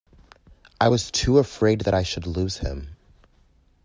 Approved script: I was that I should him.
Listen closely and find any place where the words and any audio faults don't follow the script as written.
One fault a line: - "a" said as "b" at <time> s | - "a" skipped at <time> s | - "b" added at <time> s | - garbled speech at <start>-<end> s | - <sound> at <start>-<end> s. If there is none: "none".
- "too afraid" added at 1.1 s
- "lose" added at 2.3 s